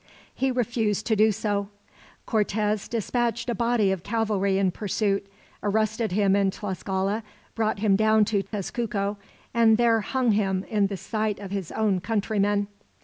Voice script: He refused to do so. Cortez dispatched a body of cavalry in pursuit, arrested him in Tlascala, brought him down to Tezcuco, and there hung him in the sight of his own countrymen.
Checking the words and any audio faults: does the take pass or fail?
fail